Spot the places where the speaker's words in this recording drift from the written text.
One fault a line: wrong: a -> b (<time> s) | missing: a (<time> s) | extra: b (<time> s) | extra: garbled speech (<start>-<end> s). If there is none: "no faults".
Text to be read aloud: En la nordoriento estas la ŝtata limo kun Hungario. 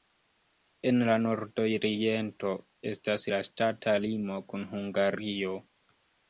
no faults